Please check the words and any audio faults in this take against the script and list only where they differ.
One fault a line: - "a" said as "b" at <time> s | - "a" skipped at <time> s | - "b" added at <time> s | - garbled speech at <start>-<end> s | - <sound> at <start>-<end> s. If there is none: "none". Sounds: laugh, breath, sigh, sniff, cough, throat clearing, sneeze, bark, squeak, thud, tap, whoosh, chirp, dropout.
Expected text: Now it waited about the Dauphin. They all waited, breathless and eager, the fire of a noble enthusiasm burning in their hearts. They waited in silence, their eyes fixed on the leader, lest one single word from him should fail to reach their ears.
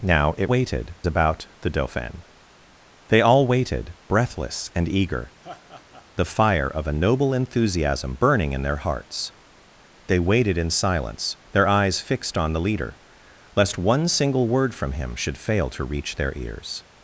- laugh at 5.4-6.1 s